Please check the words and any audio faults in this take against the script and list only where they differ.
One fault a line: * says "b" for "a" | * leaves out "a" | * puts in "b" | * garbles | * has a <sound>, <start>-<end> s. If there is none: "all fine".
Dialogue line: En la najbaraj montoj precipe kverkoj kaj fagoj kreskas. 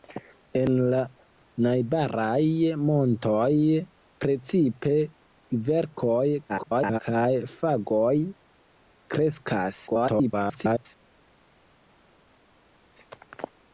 * garbles
* garbles